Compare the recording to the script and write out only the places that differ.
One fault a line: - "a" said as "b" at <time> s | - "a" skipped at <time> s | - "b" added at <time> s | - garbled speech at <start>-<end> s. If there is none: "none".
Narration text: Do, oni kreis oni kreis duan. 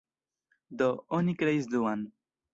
- "oni kreis" skipped at 1.7 s